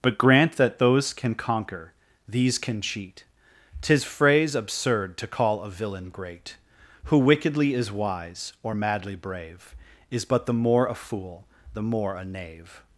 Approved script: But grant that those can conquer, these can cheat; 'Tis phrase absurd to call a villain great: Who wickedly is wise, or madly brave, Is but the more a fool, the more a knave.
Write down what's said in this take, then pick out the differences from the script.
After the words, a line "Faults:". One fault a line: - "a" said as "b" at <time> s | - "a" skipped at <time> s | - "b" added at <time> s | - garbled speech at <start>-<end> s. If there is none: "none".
But grant that those can conquer, these can cheat; 'Tis phrase absurd to call a villain great: Who wickedly is wise, or madly brave, Is but the more a fool, the more a knave.
Faults:
none